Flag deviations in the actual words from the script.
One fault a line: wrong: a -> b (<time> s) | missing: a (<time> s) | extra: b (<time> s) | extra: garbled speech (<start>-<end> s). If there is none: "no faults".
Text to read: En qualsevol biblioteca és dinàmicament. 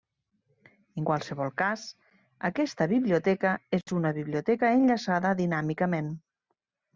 extra: cas aquesta (1.6 s)
extra: una biblioteca enllaçada (4.0 s)